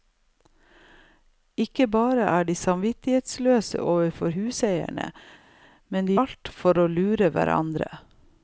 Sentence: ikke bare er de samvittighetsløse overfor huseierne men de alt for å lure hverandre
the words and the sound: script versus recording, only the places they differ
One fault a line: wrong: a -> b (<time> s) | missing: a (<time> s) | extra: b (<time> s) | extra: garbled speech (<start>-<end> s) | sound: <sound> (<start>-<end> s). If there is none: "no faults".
no faults